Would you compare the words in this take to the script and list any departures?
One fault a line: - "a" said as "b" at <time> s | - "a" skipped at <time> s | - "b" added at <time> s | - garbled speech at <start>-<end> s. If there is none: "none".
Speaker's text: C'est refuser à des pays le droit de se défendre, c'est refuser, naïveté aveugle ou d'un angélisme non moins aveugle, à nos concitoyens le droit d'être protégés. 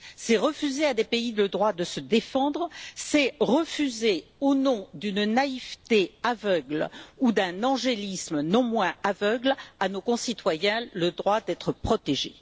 - "au nom d'une" added at 4.4 s